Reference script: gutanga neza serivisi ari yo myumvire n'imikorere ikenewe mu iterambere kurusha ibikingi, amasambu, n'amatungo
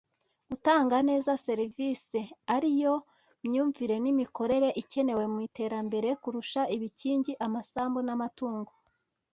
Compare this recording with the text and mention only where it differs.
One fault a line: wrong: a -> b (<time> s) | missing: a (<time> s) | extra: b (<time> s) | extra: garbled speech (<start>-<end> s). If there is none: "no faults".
no faults